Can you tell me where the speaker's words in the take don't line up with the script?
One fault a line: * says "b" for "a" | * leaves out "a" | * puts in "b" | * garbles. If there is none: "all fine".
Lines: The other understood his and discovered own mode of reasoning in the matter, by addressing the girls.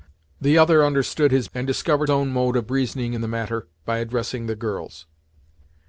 all fine